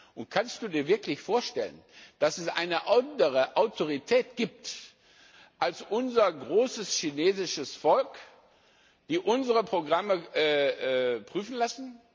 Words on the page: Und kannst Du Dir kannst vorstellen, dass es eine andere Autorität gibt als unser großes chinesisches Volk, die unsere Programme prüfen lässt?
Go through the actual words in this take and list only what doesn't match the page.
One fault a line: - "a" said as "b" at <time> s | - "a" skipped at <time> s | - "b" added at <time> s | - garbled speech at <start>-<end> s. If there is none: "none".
- "kannst" said as "wirklich" at 0.9 s